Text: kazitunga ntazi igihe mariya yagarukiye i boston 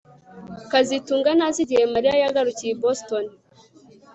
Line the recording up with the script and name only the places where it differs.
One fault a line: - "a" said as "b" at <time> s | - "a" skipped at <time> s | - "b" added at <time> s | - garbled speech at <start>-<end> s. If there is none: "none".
none